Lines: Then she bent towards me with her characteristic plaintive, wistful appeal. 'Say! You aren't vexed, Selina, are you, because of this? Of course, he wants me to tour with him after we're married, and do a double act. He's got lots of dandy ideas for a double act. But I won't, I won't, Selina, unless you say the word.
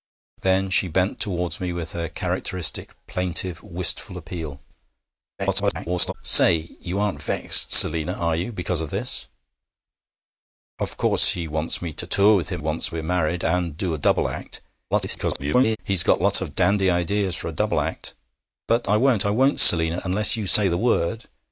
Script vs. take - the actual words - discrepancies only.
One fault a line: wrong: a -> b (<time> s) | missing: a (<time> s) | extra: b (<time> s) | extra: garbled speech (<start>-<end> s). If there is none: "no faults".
extra: garbled speech (5.4-6.1 s)
wrong: after -> wants (12.6 s)
extra: garbled speech (14.9-15.8 s)